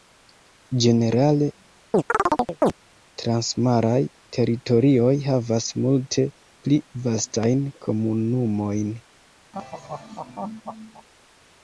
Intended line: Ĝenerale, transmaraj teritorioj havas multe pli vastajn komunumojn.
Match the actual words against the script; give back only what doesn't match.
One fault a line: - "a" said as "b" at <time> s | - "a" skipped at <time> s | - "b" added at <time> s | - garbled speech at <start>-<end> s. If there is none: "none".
none